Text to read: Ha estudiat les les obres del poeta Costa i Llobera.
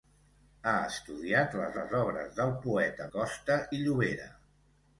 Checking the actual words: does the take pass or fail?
pass